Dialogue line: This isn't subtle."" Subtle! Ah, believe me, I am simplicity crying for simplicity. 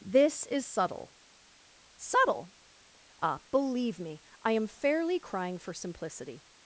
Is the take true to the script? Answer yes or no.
no